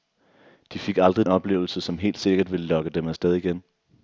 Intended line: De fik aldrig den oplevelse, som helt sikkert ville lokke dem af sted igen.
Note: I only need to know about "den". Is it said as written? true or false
false